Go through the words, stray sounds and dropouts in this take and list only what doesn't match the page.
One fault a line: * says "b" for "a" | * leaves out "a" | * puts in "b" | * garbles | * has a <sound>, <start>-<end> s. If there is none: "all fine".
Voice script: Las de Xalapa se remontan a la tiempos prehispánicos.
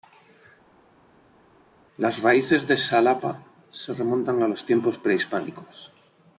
* puts in "raíces"
* says "los" for "la"